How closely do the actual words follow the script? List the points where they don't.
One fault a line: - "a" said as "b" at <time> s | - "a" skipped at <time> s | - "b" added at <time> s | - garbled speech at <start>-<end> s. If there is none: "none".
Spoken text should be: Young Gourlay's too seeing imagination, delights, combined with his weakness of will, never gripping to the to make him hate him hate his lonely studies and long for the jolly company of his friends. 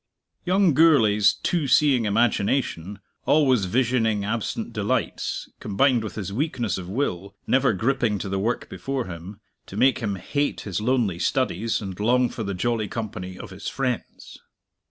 - "always visioning absent" added at 3.3 s
- "to make" said as "work before" at 8.4 s
- "hate" said as "to make" at 9.7 s